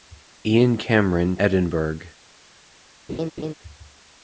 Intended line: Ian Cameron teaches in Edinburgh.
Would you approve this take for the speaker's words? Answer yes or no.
no